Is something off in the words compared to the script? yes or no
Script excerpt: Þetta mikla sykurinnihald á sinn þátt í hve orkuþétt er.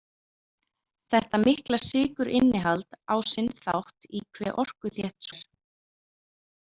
no